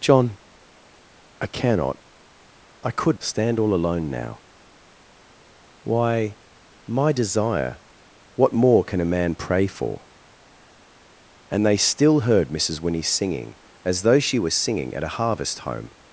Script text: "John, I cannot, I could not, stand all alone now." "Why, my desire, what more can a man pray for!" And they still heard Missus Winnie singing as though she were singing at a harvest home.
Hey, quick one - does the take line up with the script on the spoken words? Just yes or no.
no